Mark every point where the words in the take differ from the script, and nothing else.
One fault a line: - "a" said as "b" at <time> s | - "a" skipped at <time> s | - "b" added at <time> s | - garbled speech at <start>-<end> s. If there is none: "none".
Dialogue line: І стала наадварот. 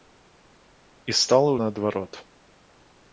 none